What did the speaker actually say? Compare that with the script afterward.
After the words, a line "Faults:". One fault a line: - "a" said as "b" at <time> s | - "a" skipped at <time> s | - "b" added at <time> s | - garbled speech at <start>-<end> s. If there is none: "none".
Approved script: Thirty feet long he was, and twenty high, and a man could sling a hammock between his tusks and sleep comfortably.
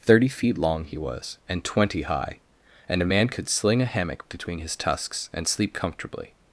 Thirty feet long he was, and twenty high, and a man could sling a hammock between his tusks and sleep comfortably.
Faults:
none